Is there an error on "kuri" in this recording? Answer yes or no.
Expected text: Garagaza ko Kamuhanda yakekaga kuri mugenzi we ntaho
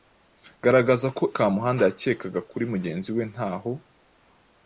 no